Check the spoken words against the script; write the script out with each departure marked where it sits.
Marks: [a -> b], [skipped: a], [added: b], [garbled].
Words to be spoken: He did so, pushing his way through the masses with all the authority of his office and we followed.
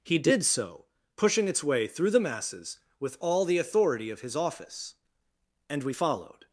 He did so, pushing [his -> its] way through the masses with all the authority of his office and we followed.